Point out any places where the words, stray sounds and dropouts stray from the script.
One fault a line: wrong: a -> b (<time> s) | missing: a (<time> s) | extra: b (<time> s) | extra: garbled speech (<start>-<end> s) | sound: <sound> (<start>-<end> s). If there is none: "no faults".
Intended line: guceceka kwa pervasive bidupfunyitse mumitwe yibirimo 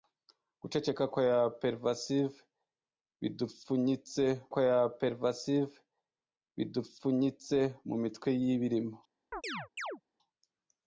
extra: kwa pervasive bidupfunyitse (4.5 s)
sound: chirp (9.3-10.0 s)